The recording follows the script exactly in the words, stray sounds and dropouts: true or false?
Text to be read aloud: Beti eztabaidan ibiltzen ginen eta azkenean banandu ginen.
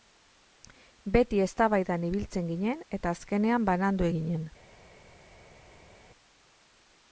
true